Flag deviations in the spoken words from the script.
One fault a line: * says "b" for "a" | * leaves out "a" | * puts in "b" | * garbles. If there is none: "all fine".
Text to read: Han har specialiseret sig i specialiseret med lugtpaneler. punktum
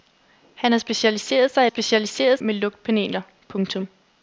all fine